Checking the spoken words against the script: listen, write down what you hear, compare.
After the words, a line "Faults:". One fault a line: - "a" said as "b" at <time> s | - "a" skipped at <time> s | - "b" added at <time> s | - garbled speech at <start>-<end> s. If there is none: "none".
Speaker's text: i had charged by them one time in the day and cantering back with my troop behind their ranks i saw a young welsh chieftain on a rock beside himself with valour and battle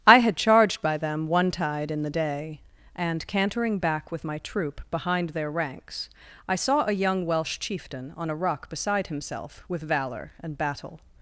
i had charged by them one tide in the day and cantering back with my troop behind their ranks i saw a young welsh chieftain on a rock beside himself with valour and battle
Faults:
- "time" said as "tide" at 1.5 s